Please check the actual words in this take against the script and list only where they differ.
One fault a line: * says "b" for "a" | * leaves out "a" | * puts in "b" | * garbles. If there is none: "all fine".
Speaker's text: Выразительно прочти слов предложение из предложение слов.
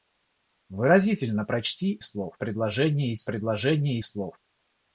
all fine